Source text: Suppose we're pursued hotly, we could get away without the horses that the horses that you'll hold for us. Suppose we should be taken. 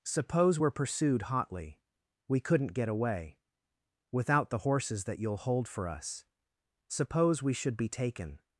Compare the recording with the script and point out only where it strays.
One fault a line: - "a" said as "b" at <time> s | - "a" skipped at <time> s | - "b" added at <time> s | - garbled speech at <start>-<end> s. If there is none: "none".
- "could" said as "couldn't" at 2.4 s
- "the horses that" skipped at 5.2 s